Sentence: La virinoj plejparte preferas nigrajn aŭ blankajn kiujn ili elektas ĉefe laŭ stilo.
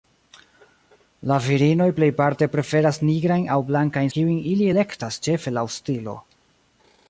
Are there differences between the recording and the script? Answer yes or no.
no